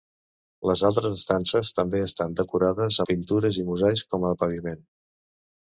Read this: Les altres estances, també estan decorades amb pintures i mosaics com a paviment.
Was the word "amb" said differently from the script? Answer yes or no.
yes